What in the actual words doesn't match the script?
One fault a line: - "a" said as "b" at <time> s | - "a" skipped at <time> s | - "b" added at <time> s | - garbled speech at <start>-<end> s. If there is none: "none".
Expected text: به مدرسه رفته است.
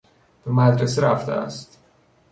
none